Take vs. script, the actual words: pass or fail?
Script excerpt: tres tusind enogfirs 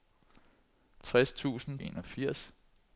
pass